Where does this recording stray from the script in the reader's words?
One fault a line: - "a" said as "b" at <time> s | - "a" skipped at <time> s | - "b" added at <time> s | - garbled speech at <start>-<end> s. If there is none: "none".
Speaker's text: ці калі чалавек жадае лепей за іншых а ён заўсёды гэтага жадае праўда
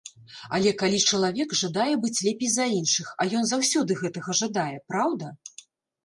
- "ці" said as "але" at 0.6 s
- "быць" added at 2.0 s